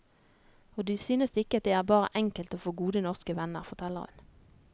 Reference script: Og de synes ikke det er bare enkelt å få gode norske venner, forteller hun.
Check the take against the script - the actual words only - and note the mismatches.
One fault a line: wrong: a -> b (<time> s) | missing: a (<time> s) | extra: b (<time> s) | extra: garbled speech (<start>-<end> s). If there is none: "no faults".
no faults